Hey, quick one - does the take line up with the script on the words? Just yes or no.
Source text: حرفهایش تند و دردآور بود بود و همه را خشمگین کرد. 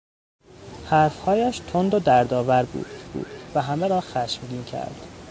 yes